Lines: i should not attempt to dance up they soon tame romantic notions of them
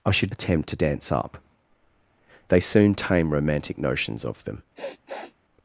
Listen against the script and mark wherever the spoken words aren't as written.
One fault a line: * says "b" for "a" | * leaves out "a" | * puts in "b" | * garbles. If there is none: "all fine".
* leaves out "not"